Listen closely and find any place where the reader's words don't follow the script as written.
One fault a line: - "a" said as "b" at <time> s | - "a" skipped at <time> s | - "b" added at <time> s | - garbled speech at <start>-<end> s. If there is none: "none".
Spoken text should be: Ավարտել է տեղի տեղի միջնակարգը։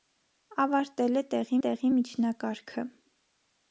none